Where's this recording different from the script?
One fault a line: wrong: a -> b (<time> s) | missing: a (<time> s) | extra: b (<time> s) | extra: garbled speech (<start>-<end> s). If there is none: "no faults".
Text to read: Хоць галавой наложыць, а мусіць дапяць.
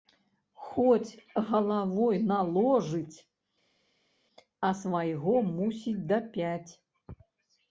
extra: свайго (4.8 s)